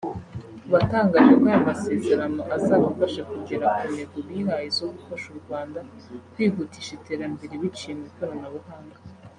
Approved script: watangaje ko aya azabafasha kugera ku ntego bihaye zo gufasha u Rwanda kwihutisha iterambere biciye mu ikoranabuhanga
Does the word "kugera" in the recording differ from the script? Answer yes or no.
no